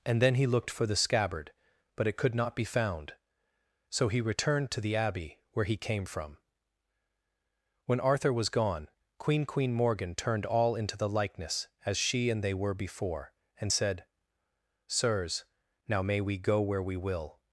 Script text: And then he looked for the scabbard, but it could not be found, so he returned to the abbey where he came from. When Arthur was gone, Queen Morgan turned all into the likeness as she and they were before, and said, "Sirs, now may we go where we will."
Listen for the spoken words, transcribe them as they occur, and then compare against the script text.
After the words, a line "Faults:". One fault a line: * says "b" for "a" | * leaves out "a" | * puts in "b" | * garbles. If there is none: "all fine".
And then he looked for the scabbard, but it could not be found, so he returned to the abbey where he came from. When Arthur was gone, Queen Queen Morgan turned all into the likeness as she and they were before, and said, "Sirs, now may we go where we will."
Faults:
* puts in "Queen"